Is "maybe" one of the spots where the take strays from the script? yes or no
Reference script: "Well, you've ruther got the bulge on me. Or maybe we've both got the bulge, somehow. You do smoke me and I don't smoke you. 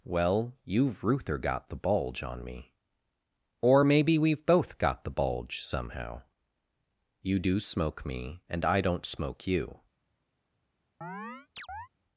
no